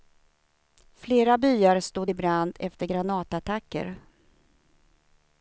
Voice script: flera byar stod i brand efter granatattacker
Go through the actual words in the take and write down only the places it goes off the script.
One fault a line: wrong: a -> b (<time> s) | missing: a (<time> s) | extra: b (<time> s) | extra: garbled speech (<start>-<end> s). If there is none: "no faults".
no faults